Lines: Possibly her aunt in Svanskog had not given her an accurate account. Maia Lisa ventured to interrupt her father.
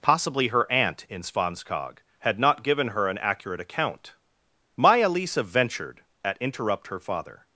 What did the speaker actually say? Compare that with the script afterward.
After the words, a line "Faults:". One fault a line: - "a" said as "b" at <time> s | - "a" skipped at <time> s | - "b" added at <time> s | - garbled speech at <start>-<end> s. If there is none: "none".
Possibly her aunt in Svanskog had not given her an accurate account. Maia Lisa ventured at interrupt her father.
Faults:
- "to" said as "at" at 6.2 s